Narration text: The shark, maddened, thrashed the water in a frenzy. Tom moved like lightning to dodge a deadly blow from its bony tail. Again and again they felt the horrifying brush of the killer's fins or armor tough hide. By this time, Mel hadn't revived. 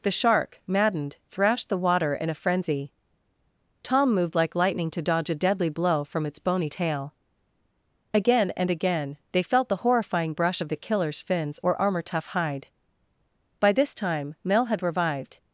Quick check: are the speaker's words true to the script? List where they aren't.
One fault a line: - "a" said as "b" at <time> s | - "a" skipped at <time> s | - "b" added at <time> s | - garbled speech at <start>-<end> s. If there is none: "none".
- "hadn't" said as "had" at 14.7 s